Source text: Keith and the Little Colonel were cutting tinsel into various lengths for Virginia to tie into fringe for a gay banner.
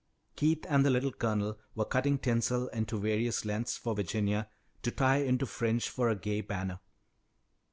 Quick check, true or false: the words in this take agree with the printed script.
true